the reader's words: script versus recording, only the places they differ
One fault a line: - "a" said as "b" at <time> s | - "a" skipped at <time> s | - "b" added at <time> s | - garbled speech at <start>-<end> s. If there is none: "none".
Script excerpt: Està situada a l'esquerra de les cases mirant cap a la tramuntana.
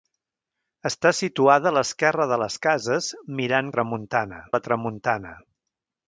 - "cap" said as "tramuntana" at 3.8 s